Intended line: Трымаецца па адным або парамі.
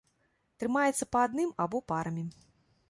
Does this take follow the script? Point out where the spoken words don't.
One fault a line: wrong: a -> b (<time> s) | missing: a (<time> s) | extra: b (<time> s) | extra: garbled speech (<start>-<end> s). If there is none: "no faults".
no faults